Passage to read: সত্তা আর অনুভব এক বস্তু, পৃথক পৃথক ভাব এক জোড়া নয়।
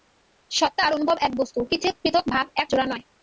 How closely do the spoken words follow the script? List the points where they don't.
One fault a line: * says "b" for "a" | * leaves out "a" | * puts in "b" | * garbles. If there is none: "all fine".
all fine